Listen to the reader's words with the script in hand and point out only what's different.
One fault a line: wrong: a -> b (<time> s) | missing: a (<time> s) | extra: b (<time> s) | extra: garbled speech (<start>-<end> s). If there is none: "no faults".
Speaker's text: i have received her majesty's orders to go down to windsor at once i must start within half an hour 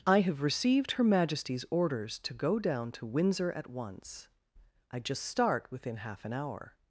wrong: must -> just (5.0 s)